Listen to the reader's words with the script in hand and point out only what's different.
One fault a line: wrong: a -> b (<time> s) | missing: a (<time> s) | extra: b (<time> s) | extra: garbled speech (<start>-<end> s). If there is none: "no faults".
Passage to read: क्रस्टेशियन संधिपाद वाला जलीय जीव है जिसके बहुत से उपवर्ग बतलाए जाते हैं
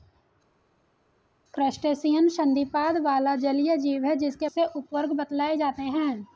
missing: बहुत (4.5 s)